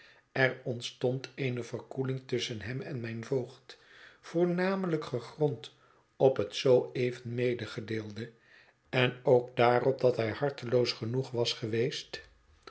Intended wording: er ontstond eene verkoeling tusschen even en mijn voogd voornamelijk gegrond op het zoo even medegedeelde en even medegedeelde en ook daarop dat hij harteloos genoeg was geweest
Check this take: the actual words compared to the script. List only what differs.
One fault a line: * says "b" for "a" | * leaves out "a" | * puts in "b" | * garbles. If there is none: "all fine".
* says "hem" for "even"
* leaves out "even medegedeelde en"